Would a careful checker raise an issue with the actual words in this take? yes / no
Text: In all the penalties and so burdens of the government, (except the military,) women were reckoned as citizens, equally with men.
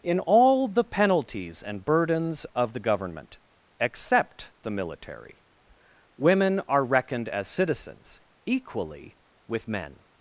yes